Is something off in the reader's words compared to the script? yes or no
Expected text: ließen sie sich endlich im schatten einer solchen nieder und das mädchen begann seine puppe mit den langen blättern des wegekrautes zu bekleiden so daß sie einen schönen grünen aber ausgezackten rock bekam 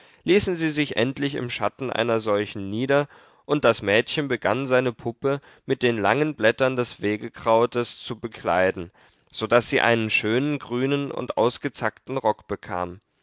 yes